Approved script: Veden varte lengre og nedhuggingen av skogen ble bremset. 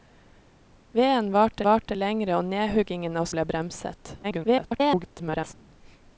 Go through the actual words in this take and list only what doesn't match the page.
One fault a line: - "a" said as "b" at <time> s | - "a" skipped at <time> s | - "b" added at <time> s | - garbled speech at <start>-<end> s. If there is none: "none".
- "varte" added at 1.7 s
- "skogen" skipped at 3.3 s
- garbled speech at 4.2-5.5 s